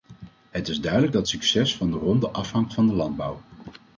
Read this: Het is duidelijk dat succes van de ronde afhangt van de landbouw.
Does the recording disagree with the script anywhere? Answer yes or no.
no